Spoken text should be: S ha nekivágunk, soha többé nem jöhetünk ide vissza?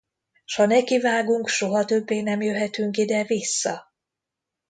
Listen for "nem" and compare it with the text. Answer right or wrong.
right